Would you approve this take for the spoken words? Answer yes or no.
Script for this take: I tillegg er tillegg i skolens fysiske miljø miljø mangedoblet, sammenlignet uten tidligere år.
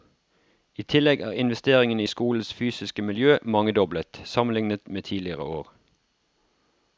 no